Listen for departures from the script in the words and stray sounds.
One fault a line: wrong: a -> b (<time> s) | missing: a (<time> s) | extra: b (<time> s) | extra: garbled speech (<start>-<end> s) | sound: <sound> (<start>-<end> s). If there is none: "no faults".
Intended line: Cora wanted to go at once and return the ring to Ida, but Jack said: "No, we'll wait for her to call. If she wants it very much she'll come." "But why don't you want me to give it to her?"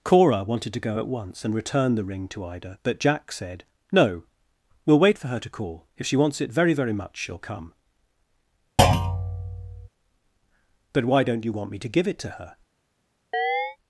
extra: very (6.7 s)
sound: thud (8.8-9.9 s)
sound: chirp (13.3-13.8 s)